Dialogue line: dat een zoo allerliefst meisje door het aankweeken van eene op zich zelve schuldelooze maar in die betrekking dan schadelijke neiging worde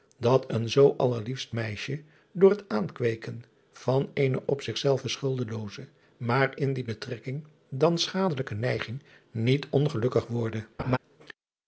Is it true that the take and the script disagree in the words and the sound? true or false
true